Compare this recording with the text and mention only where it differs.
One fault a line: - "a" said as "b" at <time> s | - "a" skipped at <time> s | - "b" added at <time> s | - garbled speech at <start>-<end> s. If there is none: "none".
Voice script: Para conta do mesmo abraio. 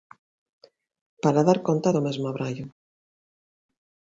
- "dar" added at 1.5 s